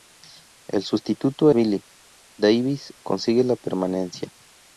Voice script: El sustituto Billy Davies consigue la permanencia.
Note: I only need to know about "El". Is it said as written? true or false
true